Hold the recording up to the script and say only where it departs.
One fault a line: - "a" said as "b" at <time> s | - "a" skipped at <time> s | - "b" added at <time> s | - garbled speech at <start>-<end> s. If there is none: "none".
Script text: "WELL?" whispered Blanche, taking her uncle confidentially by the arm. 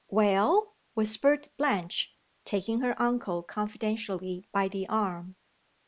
none